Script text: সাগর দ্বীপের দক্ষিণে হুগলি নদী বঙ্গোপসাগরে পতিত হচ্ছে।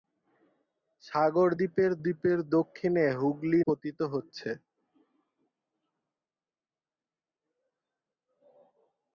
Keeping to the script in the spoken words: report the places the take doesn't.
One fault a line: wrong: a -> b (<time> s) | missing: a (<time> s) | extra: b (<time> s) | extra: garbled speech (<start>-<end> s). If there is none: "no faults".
extra: দ্বীপের (2.0 s)
missing: নদী বঙ্গোপসাগরে (3.6 s)